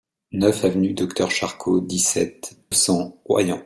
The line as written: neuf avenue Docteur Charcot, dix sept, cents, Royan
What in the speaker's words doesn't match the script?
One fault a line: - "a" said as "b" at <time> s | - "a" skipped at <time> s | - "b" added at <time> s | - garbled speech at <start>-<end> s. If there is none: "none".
none